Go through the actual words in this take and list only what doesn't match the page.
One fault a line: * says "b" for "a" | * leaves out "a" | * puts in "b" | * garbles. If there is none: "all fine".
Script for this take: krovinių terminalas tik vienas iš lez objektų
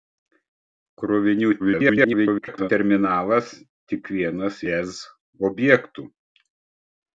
* garbles
* leaves out "iš"